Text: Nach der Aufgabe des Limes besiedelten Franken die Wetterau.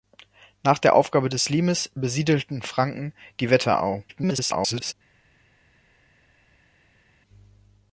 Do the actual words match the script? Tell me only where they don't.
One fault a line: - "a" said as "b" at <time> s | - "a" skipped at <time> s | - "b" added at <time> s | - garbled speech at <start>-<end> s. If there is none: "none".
- garbled speech at 4.1-4.9 s